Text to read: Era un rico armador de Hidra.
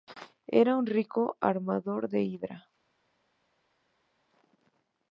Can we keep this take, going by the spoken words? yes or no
yes